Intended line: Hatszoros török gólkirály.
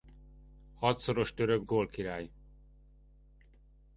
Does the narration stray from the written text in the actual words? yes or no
no